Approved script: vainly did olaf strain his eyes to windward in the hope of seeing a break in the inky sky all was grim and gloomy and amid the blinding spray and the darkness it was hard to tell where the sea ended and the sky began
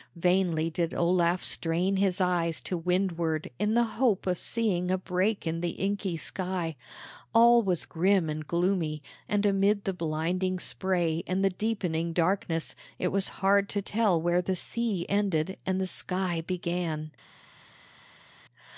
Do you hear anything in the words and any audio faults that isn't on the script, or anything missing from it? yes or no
yes